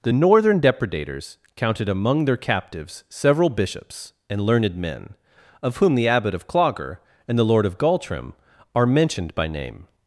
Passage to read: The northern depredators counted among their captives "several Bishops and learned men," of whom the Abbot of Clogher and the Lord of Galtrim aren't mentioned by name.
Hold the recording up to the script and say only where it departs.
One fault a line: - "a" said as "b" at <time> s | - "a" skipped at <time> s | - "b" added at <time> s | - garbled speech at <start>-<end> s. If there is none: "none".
- "aren't" said as "are" at 8.8 s